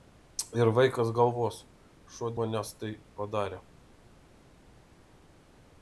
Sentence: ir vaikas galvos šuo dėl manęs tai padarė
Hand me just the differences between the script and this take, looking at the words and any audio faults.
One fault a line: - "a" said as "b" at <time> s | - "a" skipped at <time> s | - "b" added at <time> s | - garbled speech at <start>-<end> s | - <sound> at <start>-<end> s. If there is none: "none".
- "dėl" skipped at 2.3 s